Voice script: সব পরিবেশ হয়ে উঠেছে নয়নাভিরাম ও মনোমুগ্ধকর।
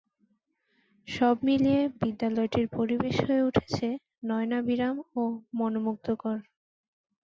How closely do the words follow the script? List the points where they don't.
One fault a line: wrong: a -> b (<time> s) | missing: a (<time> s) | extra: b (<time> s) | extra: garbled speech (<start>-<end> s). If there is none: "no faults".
extra: মিলিয়ে বিদ্যালয়টির (1.4 s)